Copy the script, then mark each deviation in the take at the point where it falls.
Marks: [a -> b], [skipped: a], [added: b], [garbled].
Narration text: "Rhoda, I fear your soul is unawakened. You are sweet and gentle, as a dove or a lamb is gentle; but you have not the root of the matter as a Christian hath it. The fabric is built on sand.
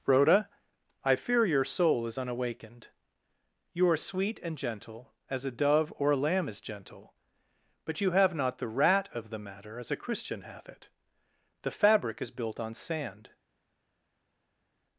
"Rhoda, I fear your soul is unawakened. You are sweet and gentle, as a dove or a lamb is gentle; but you have not the [root -> rat] of the matter as a Christian hath it. The fabric is built on sand.